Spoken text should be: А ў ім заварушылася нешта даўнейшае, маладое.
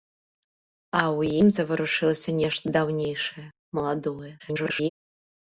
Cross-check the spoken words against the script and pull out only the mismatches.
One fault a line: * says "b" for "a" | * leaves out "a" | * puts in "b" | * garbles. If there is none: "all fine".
* garbles